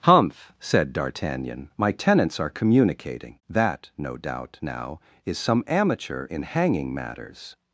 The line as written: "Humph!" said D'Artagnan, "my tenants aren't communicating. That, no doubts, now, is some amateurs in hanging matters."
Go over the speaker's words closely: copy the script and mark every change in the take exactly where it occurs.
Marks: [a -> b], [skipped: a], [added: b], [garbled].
"Humph!" said D'Artagnan, "my tenants [aren't -> are] communicating. That, no [doubts, -> doubt] now, is some [amateurs -> amateur] in hanging matters."